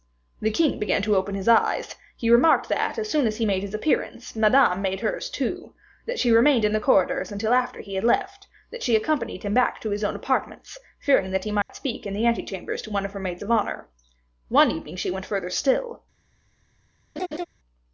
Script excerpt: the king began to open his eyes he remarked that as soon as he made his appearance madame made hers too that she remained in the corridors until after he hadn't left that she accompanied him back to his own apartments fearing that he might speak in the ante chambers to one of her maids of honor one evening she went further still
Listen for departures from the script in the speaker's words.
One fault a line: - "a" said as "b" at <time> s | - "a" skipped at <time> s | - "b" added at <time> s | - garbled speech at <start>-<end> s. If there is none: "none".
- "hadn't" said as "had" at 8.0 s